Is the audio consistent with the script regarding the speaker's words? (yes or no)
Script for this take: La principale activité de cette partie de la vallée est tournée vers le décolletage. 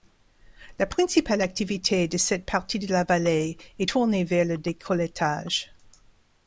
yes